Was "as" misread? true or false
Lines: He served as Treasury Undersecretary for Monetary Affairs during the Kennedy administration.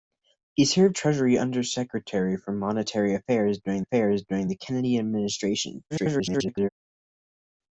true